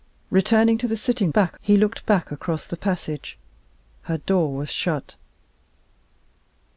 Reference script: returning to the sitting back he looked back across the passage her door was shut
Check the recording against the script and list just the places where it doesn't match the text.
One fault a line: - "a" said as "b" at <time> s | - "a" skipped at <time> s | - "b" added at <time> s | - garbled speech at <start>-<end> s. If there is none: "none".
none